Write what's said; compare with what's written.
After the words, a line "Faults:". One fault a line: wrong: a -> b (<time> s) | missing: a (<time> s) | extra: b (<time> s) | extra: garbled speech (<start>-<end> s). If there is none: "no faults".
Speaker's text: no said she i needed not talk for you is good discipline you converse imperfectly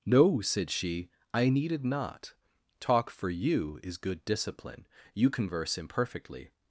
no said she i needed not talk for you is good discipline you converse imperfectly
Faults:
no faults